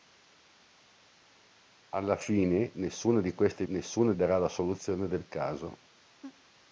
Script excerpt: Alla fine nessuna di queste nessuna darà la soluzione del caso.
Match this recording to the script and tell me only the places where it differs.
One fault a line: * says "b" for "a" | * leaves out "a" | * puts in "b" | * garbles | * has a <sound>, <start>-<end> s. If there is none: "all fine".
* has a laugh, 6.2-6.4 s